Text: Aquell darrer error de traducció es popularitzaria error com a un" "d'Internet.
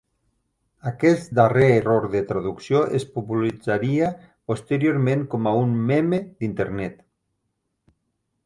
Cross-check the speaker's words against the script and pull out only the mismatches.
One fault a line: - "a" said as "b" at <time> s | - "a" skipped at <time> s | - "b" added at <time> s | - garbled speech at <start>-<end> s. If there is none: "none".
- "Aquell" said as "Aquest" at 0.9 s
- "error" said as "posteriorment" at 4.5 s
- "meme" added at 5.9 s